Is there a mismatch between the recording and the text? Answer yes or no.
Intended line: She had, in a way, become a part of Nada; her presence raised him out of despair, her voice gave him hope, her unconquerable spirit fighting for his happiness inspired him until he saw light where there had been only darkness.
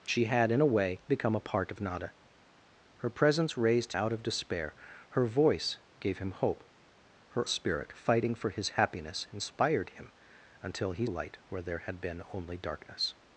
yes